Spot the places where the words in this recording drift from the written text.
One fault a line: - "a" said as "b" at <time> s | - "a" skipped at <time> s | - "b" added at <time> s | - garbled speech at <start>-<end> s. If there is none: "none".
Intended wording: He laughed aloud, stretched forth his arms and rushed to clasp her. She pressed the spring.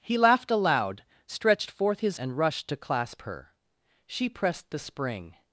- "arms" skipped at 2.2 s